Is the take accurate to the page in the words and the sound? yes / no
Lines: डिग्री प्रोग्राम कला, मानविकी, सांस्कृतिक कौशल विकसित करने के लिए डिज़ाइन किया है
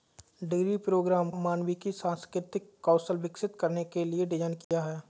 no